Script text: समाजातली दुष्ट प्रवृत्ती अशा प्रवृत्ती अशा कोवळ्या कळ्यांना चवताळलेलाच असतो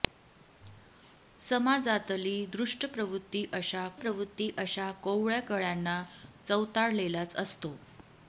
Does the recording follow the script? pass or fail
pass